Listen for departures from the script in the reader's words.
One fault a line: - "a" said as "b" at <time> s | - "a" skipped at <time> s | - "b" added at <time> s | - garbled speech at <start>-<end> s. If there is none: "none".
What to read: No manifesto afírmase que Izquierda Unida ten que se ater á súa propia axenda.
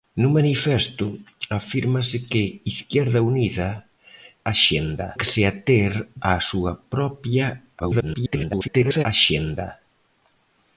- "ten" said as "axenda" at 4.5 s
- garbled speech at 7.8-9.0 s